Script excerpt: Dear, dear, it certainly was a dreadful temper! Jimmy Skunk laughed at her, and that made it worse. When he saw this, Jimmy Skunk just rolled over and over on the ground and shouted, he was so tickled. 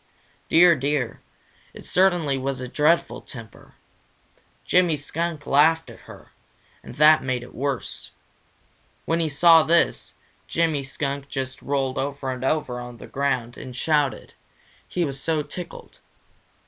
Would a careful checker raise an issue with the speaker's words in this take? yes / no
no